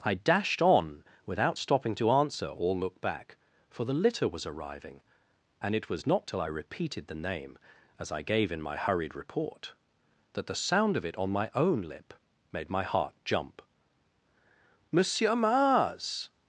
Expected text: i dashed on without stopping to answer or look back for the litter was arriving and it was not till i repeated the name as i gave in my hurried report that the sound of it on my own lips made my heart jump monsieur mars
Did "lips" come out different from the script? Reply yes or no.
yes